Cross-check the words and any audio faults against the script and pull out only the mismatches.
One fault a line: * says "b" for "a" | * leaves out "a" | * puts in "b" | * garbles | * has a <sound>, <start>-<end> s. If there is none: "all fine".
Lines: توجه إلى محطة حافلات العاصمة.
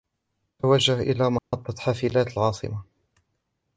* has a dropout, 1.4-1.5 s